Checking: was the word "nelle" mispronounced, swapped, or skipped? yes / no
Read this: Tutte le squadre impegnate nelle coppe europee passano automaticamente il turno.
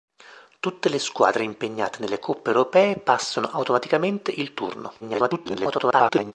no